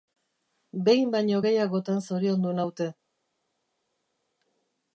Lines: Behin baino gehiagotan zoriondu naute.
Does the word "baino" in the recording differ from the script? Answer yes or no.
no